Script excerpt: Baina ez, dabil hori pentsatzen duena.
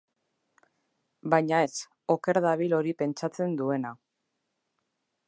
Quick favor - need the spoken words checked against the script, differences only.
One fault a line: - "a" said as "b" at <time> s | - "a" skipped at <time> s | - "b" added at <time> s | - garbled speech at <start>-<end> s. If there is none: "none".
- "oker" added at 2.2 s